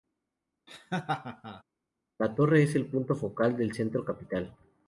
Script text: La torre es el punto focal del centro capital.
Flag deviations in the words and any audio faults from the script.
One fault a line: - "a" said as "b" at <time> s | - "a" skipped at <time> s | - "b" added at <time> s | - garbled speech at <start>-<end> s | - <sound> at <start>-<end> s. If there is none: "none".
- laugh at 0.7-1.6 s